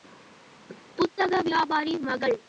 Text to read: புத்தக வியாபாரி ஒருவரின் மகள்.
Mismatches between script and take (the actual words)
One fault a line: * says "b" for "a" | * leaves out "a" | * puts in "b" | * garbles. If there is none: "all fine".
* leaves out "ஒருவரின்"